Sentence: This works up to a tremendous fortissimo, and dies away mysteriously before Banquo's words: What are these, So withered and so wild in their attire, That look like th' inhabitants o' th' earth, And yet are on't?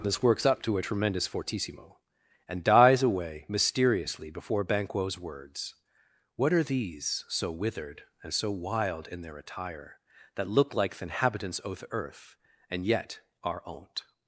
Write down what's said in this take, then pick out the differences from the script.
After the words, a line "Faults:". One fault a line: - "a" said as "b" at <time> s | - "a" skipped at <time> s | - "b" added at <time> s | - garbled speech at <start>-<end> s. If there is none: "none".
This works up to a tremendous fortissimo, and dies away mysteriously before Banquo's words: What are these, So withered and so wild in their attire, That look like th' inhabitants o' th' earth, And yet are on't?
Faults:
none